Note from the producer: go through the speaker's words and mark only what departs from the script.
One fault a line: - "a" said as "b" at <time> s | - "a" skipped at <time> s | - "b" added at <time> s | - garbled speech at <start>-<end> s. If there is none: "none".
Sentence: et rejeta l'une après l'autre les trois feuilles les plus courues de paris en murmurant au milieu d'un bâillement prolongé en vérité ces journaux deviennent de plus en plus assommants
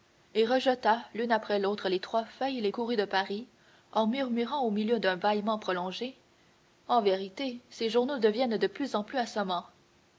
- "plus" skipped at 2.7 s